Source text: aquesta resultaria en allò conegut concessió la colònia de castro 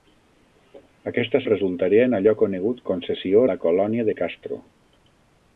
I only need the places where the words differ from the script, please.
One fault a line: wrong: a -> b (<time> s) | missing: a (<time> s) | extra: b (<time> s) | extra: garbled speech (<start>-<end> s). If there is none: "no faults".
no faults